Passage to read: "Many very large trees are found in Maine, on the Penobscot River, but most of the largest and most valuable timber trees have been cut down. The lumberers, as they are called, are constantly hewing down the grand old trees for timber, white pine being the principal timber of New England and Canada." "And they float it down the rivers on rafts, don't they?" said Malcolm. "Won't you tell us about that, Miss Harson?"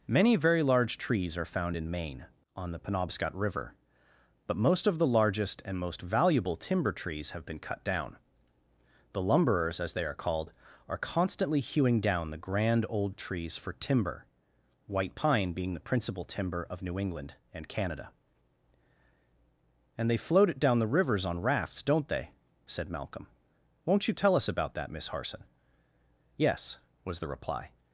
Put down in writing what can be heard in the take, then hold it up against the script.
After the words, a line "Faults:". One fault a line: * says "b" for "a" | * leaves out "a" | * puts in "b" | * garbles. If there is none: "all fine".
"Many very large trees are found in Maine, on the Penobscot River, but most of the largest and most valuable timber trees have been cut down. The lumberers, as they are called, are constantly hewing down the grand old trees for timber, white pine being the principal timber of New England and Canada." "And they float it down the rivers on rafts, don't they?" said Malcolm. "Won't you tell us about that, Miss Harson?" "Yes," was the reply
Faults:
* puts in "Yes was the reply"